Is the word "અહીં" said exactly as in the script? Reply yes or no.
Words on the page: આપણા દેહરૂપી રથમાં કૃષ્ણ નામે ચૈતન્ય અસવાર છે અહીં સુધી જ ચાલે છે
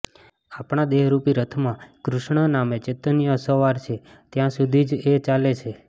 no